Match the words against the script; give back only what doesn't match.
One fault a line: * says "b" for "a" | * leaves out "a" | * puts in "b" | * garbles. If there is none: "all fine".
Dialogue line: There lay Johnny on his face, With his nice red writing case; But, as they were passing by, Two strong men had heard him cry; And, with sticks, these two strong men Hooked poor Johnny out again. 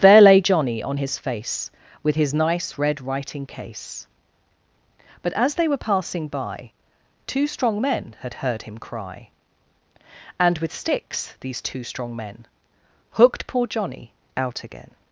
all fine